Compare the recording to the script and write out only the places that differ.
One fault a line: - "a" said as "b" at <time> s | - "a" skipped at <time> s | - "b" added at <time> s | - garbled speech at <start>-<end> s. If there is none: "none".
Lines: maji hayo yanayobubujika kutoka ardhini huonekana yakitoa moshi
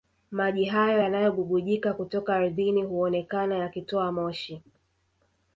none